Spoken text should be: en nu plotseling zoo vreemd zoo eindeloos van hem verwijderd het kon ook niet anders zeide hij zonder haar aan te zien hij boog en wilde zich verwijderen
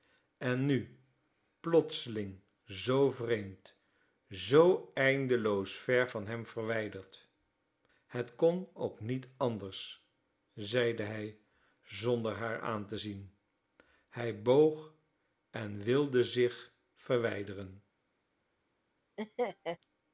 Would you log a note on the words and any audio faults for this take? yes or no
yes